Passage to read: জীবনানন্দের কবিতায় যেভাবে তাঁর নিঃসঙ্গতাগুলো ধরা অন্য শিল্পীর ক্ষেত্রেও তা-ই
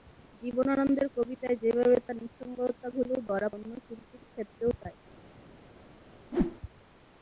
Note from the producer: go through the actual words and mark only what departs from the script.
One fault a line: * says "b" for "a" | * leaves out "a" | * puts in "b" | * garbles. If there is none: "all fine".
all fine